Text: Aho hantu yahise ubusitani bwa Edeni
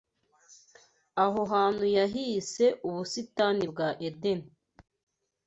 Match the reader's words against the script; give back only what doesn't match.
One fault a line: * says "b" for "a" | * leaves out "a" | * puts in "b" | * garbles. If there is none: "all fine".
all fine